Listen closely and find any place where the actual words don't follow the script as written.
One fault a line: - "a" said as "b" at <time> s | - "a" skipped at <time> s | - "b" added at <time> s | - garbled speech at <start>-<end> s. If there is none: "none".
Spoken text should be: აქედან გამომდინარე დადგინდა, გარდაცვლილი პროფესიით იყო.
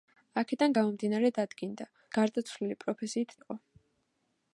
none